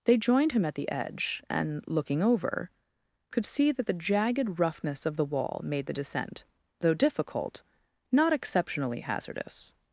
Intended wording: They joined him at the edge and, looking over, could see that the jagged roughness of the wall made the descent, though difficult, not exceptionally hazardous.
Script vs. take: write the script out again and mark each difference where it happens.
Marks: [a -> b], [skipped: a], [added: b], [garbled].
They joined him at the edge and, looking over, could see that the jagged roughness of the wall made the descent, though difficult, not exceptionally hazardous.